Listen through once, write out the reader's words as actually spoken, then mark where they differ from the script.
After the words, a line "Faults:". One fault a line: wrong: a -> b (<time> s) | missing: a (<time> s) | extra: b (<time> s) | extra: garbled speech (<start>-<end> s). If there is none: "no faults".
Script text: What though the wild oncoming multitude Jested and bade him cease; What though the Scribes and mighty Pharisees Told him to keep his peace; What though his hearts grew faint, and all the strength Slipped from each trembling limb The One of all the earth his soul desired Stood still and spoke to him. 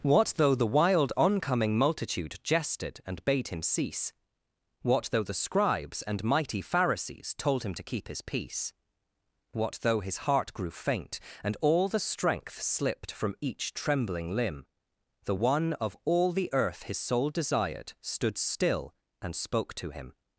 What though the wild oncoming multitude Jested and bade him cease; What though the Scribes and mighty Pharisees Told him to keep his peace; What though his heart grew faint, and all the strength Slipped from each trembling limb The One of all the earth his soul desired Stood still and spoke to him.
Faults:
wrong: hearts -> heart (10.2 s)